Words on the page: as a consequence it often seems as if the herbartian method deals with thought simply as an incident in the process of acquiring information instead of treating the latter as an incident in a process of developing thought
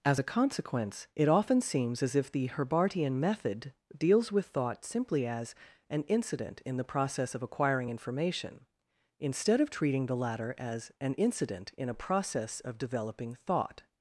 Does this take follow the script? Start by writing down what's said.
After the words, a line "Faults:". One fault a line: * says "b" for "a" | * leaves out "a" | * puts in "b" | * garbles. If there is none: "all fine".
as a consequence it often seems as if the herbartian method deals with thought simply as an incident in the process of acquiring information instead of treating the latter as an incident in a process of developing thought
Faults:
all fine